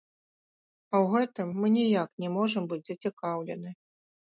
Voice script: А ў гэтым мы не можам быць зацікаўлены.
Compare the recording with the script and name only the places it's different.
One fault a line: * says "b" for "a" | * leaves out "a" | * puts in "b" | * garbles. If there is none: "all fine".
* puts in "ніяк"